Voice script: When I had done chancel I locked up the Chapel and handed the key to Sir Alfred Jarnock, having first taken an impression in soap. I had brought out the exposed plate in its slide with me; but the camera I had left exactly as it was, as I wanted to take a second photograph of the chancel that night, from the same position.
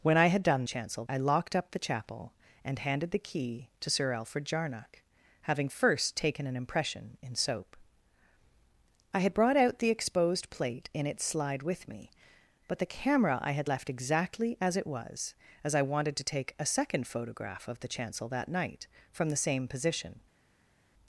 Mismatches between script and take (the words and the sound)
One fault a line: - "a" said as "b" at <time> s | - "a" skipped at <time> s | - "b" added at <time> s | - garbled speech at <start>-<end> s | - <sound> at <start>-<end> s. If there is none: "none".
none